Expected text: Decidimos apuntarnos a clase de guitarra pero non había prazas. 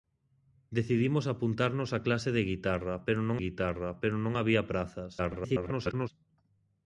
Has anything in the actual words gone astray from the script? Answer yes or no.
yes